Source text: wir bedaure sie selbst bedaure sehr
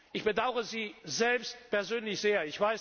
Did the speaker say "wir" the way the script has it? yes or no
no